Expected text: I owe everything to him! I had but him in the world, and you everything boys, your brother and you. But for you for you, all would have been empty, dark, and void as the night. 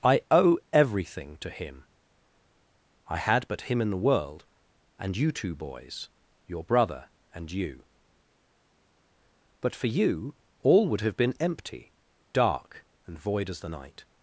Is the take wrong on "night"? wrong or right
right